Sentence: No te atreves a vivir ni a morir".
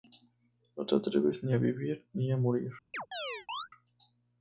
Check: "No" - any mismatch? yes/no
no